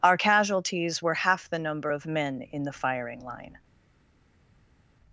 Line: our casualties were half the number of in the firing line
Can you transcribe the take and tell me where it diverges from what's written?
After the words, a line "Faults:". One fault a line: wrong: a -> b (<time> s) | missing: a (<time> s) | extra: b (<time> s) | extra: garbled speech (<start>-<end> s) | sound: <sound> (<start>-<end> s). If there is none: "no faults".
our casualties were half the number of men in the firing line
Faults:
extra: men (2.0 s)